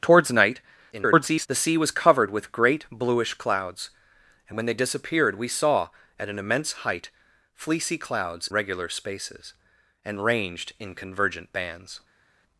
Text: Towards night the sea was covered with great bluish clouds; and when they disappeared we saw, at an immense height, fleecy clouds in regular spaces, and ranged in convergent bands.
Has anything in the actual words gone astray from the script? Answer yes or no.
yes